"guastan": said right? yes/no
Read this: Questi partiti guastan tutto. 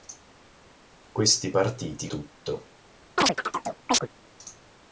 no